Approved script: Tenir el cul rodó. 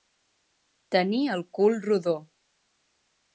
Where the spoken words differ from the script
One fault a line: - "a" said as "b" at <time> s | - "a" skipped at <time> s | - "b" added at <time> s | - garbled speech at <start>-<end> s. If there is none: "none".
none